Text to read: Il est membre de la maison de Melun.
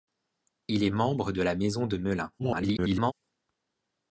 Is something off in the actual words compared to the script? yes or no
yes